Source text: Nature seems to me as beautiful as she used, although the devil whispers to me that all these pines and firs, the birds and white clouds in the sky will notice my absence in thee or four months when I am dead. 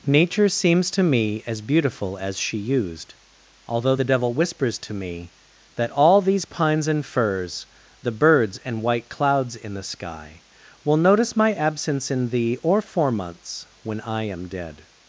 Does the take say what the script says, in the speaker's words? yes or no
yes